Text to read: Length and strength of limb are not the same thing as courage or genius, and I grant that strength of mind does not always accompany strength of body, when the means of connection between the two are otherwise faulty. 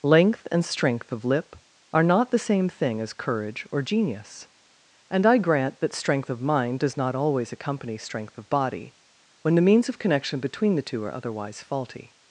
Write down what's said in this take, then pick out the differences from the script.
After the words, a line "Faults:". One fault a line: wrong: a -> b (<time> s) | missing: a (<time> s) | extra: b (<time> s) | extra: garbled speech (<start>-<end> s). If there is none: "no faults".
Length and strength of lip are not the same thing as courage or genius, and I grant that strength of mind does not always accompany strength of body, when the means of connection between the two are otherwise faulty.
Faults:
wrong: limb -> lip (1.2 s)